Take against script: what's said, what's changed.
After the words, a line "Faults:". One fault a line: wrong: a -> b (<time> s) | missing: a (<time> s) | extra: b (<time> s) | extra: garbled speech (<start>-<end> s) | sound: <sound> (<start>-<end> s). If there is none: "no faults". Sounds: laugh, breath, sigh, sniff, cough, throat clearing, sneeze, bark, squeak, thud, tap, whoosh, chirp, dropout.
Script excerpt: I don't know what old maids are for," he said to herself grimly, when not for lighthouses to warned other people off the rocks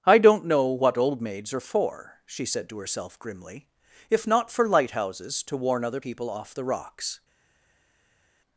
I don't know what old maids are for," she said to herself grimly, if not for lighthouses to warn other people off the rocks
Faults:
wrong: he -> she (2.2 s)
wrong: when -> if (4.1 s)
wrong: warned -> warn (5.6 s)